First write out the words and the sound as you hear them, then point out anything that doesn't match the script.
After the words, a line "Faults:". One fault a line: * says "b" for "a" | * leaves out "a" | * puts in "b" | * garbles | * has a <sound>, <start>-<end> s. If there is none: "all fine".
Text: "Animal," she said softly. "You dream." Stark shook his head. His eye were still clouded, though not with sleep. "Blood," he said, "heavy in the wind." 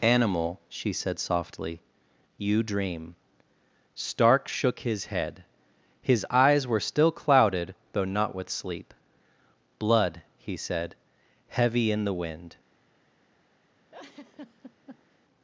"Animal," she said softly. "You dream." Stark shook his head. His eyes were still clouded, though not with sleep. "Blood," he said, "heavy in the wind."
Faults:
* says "eyes" for "eye"
* has a laugh, 13.9-15.2 s